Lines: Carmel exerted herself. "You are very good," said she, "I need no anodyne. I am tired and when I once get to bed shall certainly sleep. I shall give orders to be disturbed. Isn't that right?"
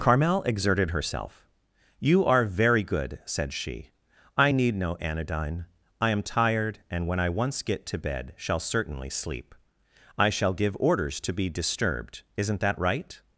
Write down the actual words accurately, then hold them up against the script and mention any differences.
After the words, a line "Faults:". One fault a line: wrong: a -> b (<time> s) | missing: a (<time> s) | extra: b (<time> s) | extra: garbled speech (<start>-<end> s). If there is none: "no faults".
Carmel exerted herself. "You are very good," said she, "I need no anodyne. I am tired and when I once get to bed shall certainly sleep. I shall give orders to be disturbed. Isn't that right?"
Faults:
no faults